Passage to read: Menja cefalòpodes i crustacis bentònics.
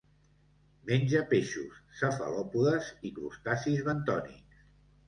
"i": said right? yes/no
yes